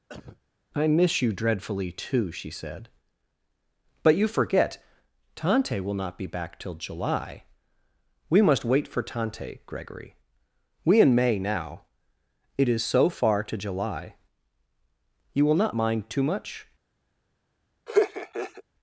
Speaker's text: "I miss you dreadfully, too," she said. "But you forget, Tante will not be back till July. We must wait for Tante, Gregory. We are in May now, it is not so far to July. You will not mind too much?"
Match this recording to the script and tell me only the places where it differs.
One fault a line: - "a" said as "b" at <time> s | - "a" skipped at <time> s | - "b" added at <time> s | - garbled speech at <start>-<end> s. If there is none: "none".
- "are" skipped at 11.0 s
- "not" skipped at 12.8 s